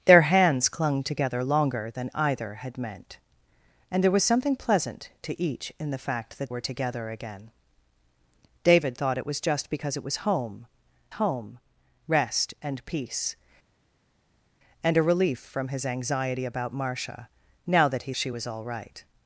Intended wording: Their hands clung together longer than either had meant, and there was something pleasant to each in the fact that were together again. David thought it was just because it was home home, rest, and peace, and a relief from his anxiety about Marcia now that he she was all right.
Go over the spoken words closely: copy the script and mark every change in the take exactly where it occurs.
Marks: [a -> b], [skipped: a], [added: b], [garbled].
Their hands clung together longer than either had meant, and there was something pleasant to each in the fact that were together again. David thought it was just because it was home home, rest, and peace, and a relief from his anxiety about Marcia now that he she was all right.